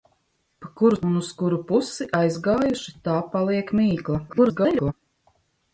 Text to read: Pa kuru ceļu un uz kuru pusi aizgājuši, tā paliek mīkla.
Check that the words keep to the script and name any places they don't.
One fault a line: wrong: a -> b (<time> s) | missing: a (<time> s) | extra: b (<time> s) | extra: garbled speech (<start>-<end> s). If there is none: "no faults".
missing: ceļu (1.0 s)
extra: garbled speech (4.3-4.9 s)